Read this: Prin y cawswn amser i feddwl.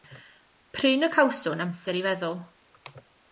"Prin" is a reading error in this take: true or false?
false